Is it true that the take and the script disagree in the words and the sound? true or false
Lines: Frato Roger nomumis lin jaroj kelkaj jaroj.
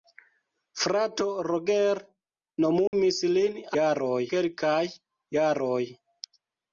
true